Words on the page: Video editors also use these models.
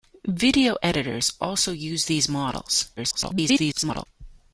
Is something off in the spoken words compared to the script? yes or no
yes